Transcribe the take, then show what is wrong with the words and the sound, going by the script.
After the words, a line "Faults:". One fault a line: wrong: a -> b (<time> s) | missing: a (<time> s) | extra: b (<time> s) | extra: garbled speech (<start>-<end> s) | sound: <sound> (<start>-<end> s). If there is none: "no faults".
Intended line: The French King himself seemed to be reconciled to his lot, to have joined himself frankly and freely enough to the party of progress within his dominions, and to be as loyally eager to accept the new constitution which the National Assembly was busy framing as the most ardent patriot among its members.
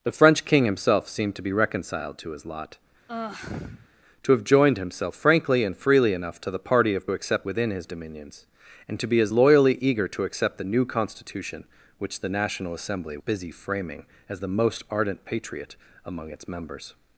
The French King himself seemed to be reconciled to his lot, to have joined himself frankly and freely enough to the party of accept within his dominions, and to be as loyally eager to accept the new constitution which the National Assembly busy framing as the most ardent patriot among its members.
Faults:
sound: sigh (3.1-3.9 s)
wrong: progress -> accept (7.1 s)
missing: was (13.2 s)